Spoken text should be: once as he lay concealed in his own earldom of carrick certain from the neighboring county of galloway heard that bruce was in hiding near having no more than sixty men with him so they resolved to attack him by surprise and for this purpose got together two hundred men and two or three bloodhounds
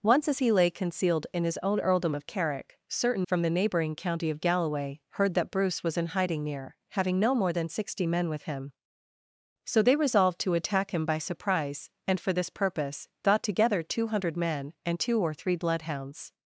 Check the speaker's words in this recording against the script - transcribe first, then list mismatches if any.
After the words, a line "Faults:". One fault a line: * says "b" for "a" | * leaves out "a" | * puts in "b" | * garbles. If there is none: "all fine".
once as he lay concealed in his own earldom of carrick certain from the neighboring county of galloway heard that bruce was in hiding near having no more than sixty men with him so they resolved to attack him by surprise and for this purpose got together two hundred men and two or three bloodhounds
Faults:
all fine